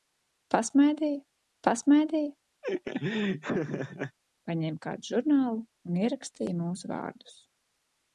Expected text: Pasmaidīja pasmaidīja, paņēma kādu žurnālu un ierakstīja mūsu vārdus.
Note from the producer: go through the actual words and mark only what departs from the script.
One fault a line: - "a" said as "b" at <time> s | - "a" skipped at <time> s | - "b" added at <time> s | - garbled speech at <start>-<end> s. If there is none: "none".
none